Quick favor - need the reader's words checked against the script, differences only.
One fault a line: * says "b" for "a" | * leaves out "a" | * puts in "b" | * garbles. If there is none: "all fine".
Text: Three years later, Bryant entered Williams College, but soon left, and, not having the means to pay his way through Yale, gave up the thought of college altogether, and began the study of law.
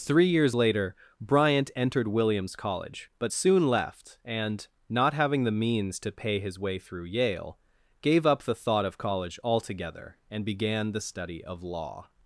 all fine